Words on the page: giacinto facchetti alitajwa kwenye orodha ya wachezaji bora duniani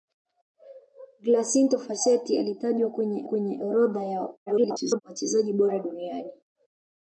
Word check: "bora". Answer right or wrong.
right